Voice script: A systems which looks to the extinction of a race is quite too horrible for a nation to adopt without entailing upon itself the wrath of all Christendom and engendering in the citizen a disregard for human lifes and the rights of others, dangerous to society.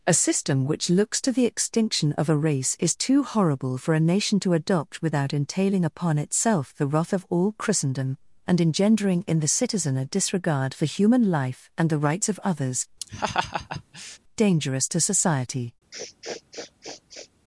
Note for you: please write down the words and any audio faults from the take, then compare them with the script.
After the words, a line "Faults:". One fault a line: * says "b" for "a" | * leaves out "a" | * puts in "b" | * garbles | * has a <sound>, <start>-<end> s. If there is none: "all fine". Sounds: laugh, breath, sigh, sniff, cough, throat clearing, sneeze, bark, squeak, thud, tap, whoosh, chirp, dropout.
A system which looks to the extinction of a race is too horrible for a nation to adopt without entailing upon itself the wrath of all Christendom and engendering in the citizen a disregard for human life and the rights of others, dangerous to society.
Faults:
* says "system" for "systems"
* leaves out "quite"
* says "life" for "lifes"
* has a laugh, 13.0-14.2 s
* has a sniff, 15.9-17.3 s